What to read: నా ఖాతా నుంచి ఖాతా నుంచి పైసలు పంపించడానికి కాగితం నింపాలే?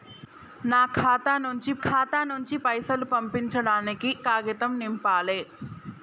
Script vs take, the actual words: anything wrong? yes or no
no